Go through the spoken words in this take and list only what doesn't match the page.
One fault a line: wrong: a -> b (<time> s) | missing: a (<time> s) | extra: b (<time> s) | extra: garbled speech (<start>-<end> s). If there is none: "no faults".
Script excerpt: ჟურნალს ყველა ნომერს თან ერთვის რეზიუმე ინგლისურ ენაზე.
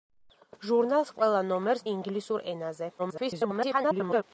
missing: თან ერთვის რეზიუმე (1.9 s)
extra: garbled speech (3.0-4.2 s)